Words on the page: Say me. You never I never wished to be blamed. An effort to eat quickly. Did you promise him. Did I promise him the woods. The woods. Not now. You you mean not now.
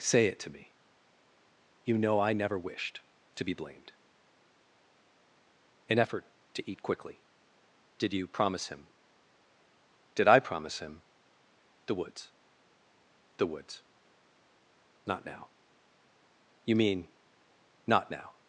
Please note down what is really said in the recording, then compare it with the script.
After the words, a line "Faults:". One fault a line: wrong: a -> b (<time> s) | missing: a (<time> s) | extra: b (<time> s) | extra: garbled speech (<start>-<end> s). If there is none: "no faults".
Say it to me. You know I never wished to be blamed. An effort to eat quickly. Did you promise him. Did I promise him the woods. The woods. Not now. You mean not now.
Faults:
extra: it to (0.2 s)
wrong: never -> know (2.0 s)
missing: you (16.8 s)